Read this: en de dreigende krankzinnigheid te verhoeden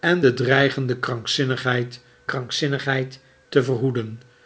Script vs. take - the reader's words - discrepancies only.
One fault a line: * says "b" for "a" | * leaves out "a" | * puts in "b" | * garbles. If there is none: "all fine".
* puts in "krankzinnigheid"